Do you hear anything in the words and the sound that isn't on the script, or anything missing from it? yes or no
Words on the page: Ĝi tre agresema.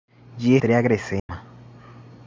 yes